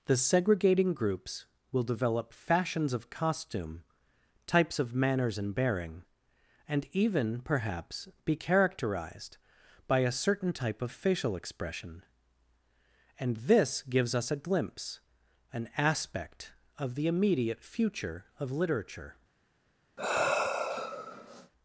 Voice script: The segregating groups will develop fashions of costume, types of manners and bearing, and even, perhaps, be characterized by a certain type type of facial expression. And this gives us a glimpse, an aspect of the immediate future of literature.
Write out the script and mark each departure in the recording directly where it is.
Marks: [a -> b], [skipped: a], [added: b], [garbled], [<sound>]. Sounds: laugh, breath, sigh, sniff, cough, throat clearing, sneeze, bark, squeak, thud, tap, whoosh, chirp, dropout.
The segregating groups will develop fashions of costume, types of manners and bearing, and even, perhaps, be characterized by a certain type [skipped: type] of facial expression. And this gives us a glimpse, an aspect of the immediate future of literature. [sigh]